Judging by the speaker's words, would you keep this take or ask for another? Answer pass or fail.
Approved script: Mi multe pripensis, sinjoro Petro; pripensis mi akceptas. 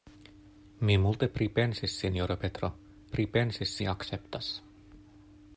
pass